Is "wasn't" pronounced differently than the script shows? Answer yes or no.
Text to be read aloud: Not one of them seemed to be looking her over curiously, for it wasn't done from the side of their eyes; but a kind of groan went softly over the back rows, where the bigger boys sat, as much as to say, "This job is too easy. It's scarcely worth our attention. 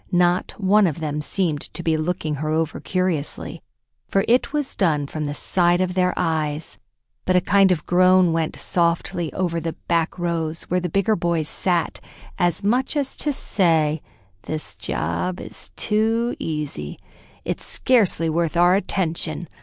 yes